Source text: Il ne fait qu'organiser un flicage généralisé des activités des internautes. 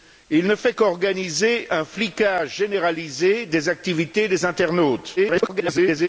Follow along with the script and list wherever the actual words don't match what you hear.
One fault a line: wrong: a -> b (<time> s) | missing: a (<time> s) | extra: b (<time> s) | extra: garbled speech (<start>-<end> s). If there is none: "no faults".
extra: garbled speech (5.2-6.1 s)